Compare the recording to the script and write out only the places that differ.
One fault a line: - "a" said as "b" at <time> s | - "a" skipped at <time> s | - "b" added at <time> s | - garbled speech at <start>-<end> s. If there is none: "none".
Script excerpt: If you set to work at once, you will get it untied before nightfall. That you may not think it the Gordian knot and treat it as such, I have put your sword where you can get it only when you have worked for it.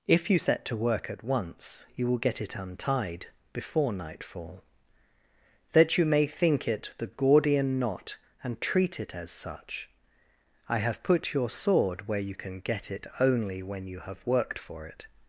- "not" skipped at 6.3 s